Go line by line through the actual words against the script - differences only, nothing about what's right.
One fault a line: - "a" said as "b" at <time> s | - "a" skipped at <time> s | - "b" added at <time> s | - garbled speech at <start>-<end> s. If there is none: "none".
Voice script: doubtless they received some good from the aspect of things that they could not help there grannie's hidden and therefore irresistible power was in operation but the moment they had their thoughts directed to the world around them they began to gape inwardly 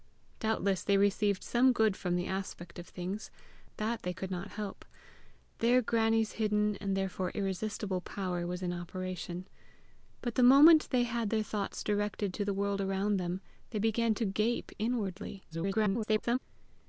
- garbled speech at 15.5-16.4 s